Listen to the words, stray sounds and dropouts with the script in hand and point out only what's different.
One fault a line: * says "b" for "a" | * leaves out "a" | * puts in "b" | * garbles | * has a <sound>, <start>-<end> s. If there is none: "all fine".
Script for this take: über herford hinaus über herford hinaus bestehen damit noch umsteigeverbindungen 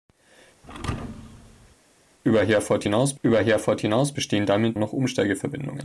* has a thud, 0.6-1.8 s